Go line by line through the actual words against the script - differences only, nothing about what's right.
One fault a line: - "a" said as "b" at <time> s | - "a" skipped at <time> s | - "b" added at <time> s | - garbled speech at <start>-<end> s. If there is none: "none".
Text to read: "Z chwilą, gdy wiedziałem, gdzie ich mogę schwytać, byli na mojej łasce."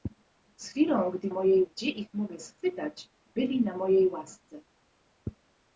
- "wiedziałem" said as "mojej" at 1.3 s